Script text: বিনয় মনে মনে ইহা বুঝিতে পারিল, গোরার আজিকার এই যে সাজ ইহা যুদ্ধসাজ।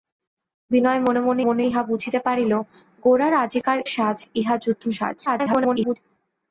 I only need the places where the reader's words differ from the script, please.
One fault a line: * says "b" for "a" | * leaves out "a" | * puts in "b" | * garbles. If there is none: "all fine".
* puts in "মনে"
* leaves out "এই যে"
* garbles